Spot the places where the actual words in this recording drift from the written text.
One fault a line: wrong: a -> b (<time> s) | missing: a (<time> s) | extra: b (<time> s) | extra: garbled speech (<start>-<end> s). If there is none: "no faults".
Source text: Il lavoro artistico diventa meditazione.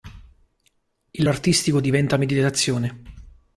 missing: lavoro (1.2 s)